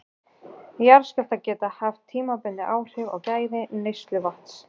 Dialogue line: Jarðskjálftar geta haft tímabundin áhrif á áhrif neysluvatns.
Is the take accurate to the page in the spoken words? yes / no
no